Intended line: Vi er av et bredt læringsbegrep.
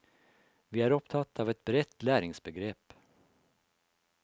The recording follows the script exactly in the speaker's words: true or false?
false